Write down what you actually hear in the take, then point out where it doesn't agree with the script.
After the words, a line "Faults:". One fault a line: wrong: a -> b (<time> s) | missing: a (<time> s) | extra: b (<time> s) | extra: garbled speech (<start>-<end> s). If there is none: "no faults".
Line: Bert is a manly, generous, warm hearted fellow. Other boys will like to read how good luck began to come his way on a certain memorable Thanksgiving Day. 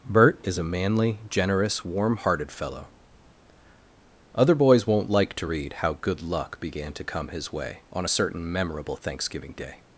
Bert is a manly, generous, warm hearted fellow. Other boys won't like to read how good luck began to come his way on a certain memorable Thanksgiving Day.
Faults:
wrong: will -> won't (4.9 s)